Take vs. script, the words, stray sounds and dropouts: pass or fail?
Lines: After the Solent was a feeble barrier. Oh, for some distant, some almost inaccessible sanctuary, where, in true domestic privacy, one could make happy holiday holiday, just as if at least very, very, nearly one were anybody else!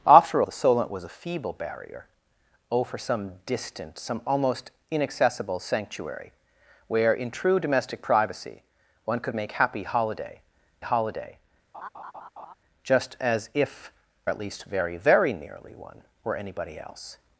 fail